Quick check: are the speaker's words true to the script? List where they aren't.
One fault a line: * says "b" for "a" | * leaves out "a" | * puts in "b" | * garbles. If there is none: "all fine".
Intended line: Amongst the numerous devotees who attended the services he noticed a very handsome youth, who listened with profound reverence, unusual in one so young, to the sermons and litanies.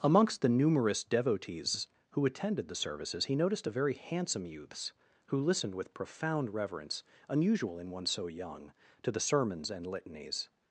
* says "youths" for "youth"